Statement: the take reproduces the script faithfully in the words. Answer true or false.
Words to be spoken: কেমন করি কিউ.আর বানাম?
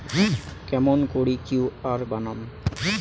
true